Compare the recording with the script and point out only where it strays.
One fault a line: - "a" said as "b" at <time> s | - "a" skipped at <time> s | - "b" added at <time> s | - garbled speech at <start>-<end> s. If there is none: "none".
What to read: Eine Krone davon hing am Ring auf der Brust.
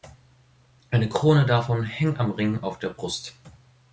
none